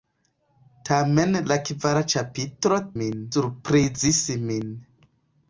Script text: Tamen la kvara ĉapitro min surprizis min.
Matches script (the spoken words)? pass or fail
pass